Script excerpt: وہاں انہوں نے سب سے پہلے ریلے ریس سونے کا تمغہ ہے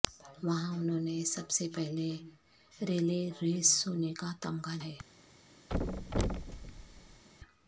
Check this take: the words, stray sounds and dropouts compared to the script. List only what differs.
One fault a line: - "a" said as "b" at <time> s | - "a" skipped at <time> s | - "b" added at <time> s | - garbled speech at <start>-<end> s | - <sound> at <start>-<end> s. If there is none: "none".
- thud at 5.7-7.2 s